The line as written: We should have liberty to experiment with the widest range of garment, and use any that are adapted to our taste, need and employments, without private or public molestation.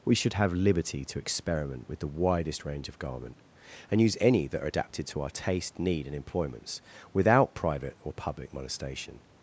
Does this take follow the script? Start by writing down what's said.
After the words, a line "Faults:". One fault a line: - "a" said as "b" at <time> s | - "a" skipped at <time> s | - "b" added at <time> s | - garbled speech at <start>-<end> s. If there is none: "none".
We should have liberty to experiment with the widest range of garment, and use any that are adapted to our taste, need and employments, without private or public molestation.
Faults:
none